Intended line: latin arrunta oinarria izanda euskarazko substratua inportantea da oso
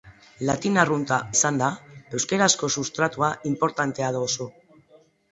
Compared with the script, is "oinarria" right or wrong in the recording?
wrong